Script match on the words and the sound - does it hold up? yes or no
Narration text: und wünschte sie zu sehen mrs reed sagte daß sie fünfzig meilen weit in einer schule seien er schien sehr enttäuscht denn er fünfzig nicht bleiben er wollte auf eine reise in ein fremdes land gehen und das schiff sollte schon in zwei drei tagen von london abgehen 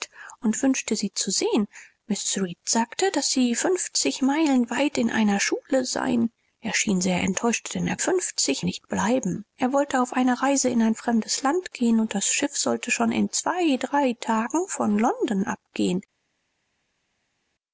yes